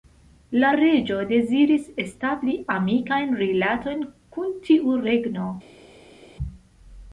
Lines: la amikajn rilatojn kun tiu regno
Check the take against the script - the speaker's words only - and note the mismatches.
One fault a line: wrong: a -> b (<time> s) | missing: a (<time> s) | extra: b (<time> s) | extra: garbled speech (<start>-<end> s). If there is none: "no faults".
extra: reĝo deziris establi (0.8 s)